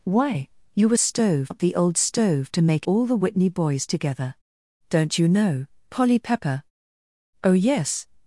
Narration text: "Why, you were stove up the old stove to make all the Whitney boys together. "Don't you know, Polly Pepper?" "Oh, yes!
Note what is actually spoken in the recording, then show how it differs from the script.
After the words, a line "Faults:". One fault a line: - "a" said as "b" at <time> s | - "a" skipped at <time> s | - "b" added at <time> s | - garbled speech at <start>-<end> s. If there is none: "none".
"Why, you were stove up the old stove to make all the Whitney boys together. "Don't you know, Polly Pepper?" "Oh, yes!
Faults:
none